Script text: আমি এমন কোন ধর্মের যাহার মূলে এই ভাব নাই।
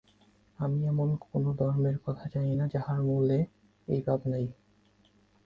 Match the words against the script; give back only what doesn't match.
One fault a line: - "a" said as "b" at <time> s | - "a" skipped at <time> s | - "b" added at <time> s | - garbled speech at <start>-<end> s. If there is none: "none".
- "কথা জানি না" added at 2.0 s